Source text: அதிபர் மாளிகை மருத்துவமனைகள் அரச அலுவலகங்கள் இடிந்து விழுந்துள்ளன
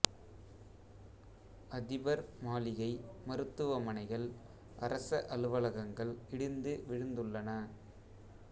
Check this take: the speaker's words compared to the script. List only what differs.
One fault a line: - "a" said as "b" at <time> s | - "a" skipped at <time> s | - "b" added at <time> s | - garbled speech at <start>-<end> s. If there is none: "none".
none